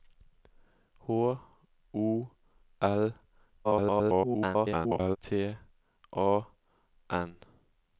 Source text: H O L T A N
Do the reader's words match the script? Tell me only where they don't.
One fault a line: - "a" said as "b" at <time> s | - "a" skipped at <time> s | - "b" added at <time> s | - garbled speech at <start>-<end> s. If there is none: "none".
- garbled speech at 3.6-5.2 s